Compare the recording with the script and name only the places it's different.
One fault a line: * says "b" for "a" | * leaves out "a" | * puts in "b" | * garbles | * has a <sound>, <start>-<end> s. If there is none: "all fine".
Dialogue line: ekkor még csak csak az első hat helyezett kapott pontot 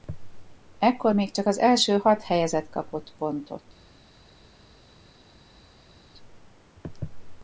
* leaves out "csak"